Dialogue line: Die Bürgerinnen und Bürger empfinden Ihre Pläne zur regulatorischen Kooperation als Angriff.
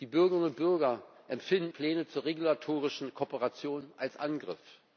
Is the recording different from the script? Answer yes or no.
yes